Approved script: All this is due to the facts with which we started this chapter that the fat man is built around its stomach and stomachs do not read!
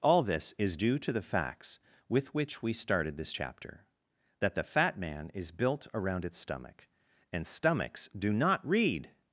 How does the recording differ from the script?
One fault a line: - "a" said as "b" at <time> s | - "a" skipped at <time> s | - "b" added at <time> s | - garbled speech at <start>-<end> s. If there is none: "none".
none